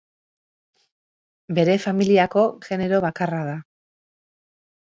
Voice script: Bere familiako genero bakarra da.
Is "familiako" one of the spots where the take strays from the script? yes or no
no